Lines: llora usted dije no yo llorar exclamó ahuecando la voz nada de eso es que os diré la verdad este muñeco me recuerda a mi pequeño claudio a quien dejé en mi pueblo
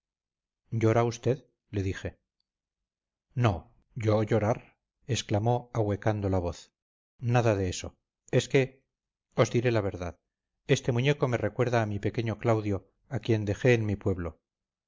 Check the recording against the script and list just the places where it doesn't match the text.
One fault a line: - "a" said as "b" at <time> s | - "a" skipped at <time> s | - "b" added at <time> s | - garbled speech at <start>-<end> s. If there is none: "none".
- "le" added at 1.7 s